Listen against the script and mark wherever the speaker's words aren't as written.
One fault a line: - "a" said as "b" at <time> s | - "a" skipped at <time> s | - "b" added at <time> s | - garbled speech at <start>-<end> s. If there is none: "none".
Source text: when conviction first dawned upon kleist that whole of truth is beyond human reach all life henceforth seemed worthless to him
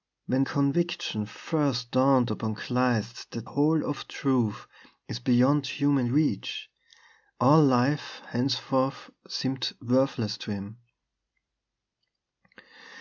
none